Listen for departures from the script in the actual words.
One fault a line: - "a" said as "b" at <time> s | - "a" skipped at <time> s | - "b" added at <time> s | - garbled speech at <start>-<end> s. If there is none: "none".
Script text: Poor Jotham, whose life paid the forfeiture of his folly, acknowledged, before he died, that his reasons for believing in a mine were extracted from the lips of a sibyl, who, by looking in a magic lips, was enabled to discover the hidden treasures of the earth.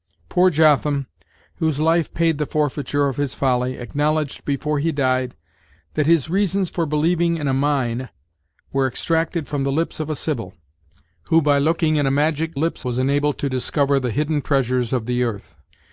none